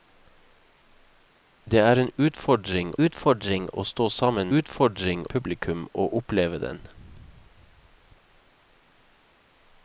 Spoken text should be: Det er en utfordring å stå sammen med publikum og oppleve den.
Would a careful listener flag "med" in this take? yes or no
yes